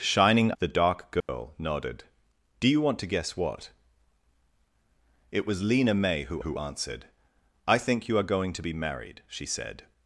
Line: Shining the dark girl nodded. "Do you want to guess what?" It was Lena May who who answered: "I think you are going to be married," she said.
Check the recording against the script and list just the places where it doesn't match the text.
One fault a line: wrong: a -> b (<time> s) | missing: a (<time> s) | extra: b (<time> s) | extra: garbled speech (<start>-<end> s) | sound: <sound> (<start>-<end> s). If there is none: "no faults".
sound: dropout (1.2-1.3 s)